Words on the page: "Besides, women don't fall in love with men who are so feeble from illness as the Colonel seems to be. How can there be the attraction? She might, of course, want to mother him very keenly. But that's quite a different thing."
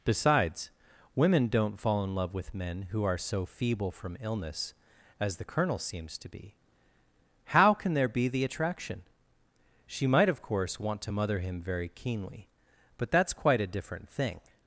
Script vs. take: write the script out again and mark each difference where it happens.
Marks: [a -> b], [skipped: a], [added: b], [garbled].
"Besides, women don't fall in love with men who are so feeble from illness as the Colonel seems to be. How can there be the attraction? She might, of course, want to mother him very keenly. But that's quite a different thing."